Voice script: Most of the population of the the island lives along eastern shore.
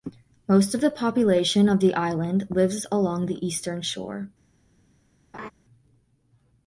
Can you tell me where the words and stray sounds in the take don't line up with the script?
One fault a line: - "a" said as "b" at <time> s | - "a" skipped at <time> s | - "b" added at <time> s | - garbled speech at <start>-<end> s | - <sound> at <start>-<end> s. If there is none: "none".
- "the" skipped at 1.9 s
- "the" added at 3.3 s
- laugh at 5.3-5.5 s